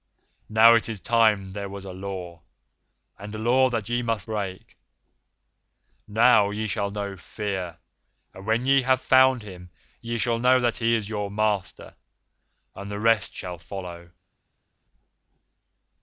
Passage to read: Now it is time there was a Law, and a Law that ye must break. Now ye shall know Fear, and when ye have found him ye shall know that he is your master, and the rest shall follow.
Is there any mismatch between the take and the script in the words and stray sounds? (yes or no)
no